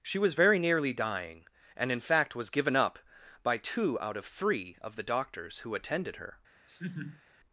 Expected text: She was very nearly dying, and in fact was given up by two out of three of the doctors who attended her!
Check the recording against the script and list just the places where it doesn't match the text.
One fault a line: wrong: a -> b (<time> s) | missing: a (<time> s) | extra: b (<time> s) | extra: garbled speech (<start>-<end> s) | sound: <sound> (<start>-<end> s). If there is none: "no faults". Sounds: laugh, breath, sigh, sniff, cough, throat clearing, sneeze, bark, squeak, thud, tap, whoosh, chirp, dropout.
sound: laugh (6.7-7.2 s)